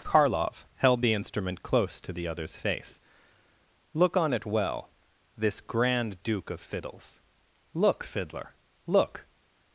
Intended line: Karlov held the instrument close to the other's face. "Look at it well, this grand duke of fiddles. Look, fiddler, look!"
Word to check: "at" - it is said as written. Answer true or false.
false